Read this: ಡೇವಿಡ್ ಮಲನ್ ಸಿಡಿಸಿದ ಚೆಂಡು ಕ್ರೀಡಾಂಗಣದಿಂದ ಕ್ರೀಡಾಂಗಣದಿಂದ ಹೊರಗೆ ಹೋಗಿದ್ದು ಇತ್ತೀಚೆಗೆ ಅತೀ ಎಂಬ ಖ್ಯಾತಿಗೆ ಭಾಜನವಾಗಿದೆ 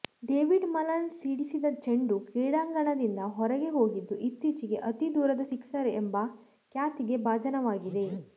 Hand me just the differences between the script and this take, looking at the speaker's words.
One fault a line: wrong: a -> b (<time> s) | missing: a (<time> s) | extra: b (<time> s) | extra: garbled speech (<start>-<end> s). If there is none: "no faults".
missing: ಕ್ರೀಡಾಂಗಣದಿಂದ (3.3 s)
extra: ದೂರದ ಸಿಕ್ಸರ್ (5.2 s)